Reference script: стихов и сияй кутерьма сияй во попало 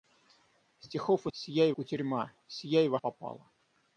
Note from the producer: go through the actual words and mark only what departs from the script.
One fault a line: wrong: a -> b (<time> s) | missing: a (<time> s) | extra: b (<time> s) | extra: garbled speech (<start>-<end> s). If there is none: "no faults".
no faults